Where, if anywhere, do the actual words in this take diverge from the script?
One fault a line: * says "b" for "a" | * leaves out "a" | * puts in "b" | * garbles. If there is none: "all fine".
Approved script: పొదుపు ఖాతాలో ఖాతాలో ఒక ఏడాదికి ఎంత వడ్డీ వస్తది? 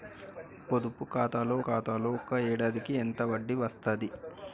all fine